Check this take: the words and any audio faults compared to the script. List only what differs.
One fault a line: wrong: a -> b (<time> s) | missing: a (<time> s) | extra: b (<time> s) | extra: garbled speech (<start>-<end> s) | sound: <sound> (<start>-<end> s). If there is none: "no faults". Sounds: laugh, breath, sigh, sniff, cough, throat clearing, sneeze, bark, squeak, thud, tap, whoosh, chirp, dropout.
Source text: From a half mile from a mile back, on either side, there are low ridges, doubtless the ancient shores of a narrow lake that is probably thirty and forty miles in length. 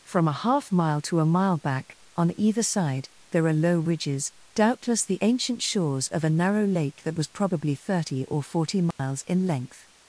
wrong: from -> to (1.0 s)
wrong: is -> was (7.2 s)
wrong: and -> or (8.3 s)
sound: dropout (8.9-9.0 s)